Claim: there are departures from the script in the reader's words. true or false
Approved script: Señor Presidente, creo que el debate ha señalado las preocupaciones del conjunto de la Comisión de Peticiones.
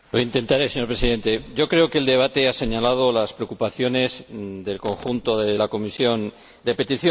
false